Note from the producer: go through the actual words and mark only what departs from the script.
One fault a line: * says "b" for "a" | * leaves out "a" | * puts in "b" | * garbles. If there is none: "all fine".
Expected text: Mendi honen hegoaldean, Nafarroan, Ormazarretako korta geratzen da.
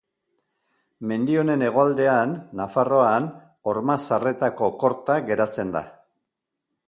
all fine